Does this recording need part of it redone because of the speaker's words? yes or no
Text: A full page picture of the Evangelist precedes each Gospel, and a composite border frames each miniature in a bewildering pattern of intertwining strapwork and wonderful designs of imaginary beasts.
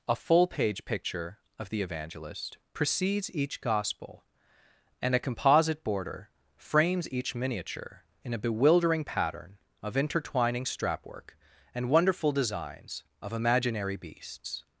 no